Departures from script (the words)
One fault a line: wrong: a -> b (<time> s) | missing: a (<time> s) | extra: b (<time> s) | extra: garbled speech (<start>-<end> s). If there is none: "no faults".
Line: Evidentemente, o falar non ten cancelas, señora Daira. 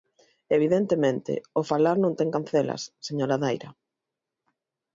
no faults